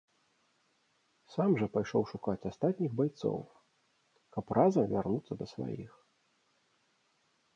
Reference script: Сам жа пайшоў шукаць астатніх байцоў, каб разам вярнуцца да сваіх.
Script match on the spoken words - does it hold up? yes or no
yes